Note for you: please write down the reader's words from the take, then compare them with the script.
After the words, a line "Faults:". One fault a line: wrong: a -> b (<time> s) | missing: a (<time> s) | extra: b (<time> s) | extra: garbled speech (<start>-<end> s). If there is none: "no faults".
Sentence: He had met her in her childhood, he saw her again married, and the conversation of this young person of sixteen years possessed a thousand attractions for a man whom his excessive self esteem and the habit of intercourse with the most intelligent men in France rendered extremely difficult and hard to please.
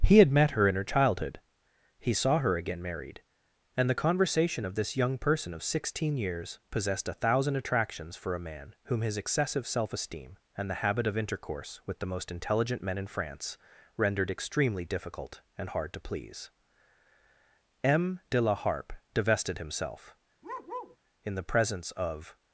He had met her in her childhood, he saw her again married, and the conversation of this young person of sixteen years possessed a thousand attractions for a man whom his excessive self esteem and the habit of intercourse with the most intelligent men in France rendered extremely difficult and hard to please. "M. de La Harpe divested himself, in the presence of
Faults:
extra: M de La Harpe divested himself in the presence of (17.8 s)